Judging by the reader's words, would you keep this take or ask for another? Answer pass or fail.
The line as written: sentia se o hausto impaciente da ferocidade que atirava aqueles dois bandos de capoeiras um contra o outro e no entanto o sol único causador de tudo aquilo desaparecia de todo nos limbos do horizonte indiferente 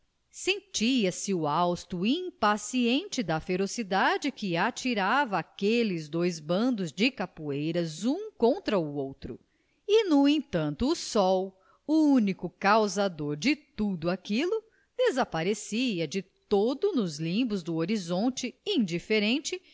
pass